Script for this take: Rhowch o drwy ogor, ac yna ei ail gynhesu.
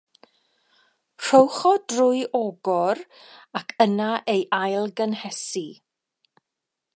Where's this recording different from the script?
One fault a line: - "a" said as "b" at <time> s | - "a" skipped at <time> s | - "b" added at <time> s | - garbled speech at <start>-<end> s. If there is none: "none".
none